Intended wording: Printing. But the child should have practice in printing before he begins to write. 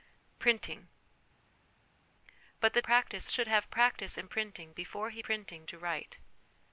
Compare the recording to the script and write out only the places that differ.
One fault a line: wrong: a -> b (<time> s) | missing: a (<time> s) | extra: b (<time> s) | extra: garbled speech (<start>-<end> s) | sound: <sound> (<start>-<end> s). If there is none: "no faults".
wrong: child -> practice (2.8 s)
wrong: begins -> printing (5.2 s)